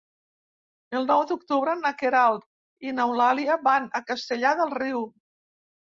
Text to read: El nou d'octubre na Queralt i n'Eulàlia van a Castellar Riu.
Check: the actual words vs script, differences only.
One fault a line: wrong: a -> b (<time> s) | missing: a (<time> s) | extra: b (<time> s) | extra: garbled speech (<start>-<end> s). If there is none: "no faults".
extra: del (4.6 s)